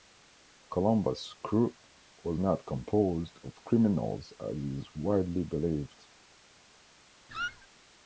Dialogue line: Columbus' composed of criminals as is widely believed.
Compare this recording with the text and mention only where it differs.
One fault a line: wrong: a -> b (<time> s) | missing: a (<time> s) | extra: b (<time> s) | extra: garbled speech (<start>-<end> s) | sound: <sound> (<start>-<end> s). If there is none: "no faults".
extra: crew was not (1.4 s)
sound: squeak (7.3-7.7 s)